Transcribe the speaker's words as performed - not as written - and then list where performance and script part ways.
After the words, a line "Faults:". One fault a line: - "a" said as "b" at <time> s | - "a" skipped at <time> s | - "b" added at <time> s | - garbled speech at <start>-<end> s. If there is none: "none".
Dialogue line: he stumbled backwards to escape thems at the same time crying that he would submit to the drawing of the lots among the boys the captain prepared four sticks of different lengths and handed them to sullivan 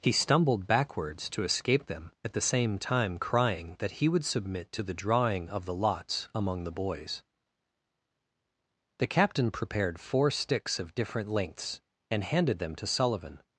he stumbled backwards to escape them at the same time crying that he would submit to the drawing of the lots among the boys the captain prepared four sticks of different lengths and handed them to sullivan
Faults:
- "thems" said as "them" at 1.9 s